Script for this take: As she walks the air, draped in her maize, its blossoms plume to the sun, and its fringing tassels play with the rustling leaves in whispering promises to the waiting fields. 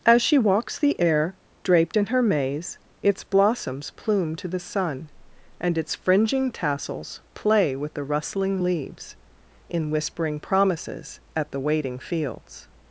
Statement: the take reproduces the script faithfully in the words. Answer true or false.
false